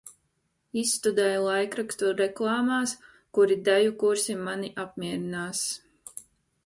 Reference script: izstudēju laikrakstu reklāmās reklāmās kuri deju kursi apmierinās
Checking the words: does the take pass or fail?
fail